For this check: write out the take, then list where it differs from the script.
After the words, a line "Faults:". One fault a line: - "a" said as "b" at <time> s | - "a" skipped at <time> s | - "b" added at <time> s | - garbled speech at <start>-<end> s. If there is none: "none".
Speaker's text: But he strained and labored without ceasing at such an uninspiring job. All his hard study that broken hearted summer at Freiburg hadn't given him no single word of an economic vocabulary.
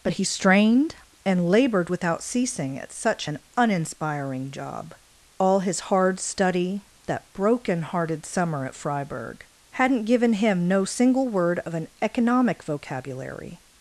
But he strained and labored without ceasing at such an uninspiring job. All his hard study that broken hearted summer at Freiburg hadn't given him no single word of an economic vocabulary.
Faults:
none